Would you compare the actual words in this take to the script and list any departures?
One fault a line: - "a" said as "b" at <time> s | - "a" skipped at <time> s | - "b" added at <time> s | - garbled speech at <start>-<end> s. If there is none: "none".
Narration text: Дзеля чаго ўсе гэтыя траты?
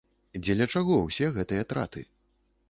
none